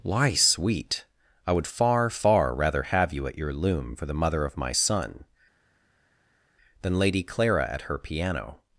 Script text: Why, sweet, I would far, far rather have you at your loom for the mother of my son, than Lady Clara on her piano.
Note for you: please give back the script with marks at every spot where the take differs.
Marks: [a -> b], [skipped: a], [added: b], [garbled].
Why, sweet, I would far, far rather have you at your loom for the mother of my son, than Lady Clara [on -> at] her piano.